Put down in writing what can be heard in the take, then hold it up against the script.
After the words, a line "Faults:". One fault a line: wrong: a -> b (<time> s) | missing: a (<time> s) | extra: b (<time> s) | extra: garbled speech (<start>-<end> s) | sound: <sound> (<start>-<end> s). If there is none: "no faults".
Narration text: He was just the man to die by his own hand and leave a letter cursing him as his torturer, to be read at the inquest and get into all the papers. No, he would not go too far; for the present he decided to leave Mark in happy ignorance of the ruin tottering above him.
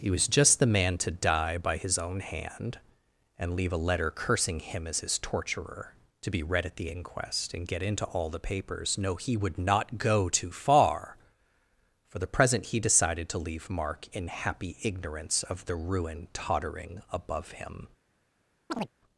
He was just the man to die by his own hand and leave a letter cursing him as his torturer, to be read at the inquest and get into all the papers. No, he would not go too far; for the present he decided to leave Mark in happy ignorance of the ruin tottering above him.
Faults:
sound: chirp (18.7-18.9 s)